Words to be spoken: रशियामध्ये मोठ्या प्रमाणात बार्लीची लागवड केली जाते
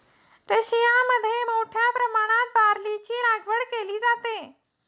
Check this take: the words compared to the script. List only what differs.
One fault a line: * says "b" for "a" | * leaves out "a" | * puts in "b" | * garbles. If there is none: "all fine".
all fine